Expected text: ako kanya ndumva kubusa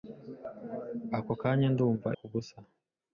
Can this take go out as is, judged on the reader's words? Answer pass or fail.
pass